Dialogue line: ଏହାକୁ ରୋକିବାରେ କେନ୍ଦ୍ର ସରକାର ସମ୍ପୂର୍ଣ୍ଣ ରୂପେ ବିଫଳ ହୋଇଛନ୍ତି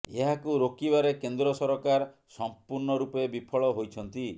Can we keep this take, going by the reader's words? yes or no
yes